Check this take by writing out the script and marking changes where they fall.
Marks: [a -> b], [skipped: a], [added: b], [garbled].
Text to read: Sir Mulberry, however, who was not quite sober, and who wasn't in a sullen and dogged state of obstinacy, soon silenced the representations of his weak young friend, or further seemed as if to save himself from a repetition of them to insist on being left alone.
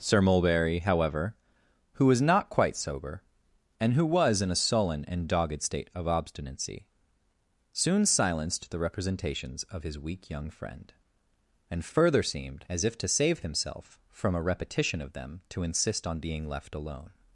Sir Mulberry, however, who was not quite sober, and who [wasn't -> was] in a sullen and dogged state of obstinacy, soon silenced the representations of his weak young friend, [or -> and] further seemed as if to save himself from a repetition of them to insist on being left alone.